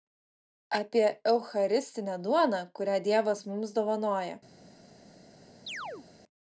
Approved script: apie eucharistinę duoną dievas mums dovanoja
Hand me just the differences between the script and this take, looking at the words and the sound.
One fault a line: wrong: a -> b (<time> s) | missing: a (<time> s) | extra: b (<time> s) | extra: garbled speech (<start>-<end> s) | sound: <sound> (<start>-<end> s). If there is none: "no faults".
extra: kurią (2.8 s)
sound: chirp (5.7-6.1 s)